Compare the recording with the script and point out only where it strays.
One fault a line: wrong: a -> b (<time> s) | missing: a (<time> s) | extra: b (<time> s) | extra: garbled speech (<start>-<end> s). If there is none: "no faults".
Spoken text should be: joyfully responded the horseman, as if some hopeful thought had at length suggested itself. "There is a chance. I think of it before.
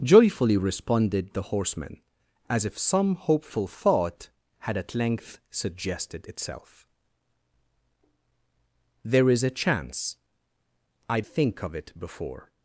no faults